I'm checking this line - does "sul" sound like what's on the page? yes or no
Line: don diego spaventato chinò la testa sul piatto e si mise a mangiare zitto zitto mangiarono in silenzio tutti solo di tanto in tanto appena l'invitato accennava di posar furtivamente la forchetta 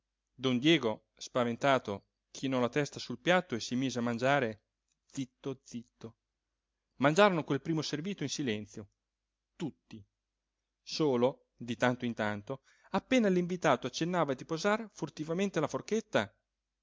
yes